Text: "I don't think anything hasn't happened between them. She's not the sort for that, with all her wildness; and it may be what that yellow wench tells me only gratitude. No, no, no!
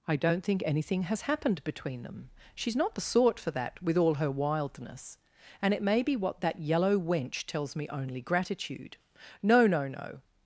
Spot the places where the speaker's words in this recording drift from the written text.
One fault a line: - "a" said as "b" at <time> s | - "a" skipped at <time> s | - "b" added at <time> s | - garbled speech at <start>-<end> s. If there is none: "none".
- "hasn't" said as "has" at 1.0 s